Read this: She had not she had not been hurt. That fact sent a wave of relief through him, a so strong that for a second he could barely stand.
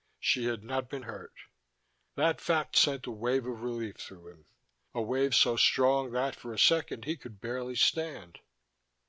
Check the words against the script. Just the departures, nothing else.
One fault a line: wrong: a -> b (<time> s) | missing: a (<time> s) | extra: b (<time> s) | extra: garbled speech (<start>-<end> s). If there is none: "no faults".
missing: she had not (0.9 s)
extra: wave (5.0 s)